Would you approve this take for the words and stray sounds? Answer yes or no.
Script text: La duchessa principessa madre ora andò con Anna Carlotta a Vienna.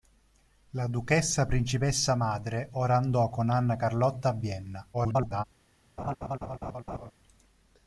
no